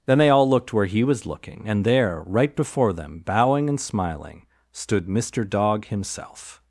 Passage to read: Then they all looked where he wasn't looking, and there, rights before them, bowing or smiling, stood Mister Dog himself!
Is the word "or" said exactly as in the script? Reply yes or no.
no